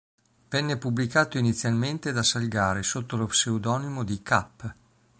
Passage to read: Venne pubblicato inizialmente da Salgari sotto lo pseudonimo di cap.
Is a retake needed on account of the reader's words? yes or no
no